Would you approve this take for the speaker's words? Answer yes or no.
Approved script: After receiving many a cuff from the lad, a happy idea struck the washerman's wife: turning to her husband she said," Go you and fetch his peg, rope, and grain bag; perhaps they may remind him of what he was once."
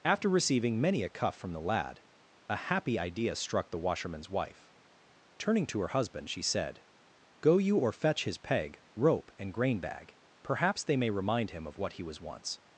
no